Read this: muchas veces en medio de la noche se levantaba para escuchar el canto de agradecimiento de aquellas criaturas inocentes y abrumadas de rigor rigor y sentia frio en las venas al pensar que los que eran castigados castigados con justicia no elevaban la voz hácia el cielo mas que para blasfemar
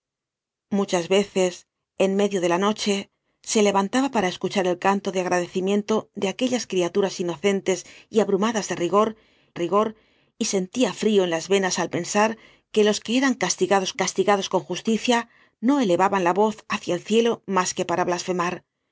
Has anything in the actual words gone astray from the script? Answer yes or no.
no